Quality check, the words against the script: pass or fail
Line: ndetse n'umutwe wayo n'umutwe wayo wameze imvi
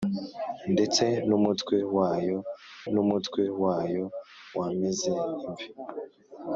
pass